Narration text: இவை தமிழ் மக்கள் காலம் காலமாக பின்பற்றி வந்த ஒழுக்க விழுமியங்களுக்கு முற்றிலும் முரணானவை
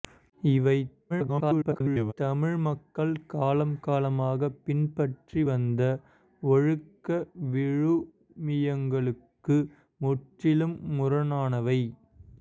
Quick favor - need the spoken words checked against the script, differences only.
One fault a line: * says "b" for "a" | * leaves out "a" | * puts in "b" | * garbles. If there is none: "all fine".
* garbles